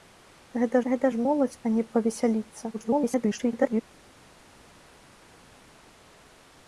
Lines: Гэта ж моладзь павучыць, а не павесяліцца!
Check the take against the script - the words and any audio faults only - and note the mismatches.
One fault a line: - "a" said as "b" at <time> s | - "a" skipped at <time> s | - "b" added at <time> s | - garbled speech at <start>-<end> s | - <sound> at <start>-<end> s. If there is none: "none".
- "гэта" added at 0.9 s
- "павучыць" skipped at 1.5 s
- garbled speech at 2.7-3.8 s